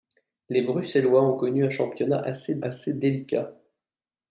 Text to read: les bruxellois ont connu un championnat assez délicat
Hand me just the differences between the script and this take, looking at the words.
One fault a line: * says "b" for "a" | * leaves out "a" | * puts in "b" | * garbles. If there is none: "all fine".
* puts in "assez"